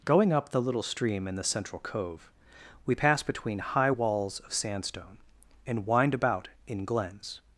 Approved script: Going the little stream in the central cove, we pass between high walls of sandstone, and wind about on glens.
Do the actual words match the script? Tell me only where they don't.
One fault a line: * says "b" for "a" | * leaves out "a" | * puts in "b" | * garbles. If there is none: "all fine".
* puts in "up"
* says "in" for "on"